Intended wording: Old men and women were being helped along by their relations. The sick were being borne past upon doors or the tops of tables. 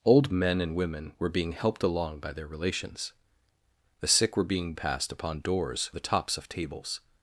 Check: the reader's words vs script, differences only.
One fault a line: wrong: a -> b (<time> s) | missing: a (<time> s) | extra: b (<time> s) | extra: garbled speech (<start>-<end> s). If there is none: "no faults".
missing: borne (4.7 s)
missing: or (5.9 s)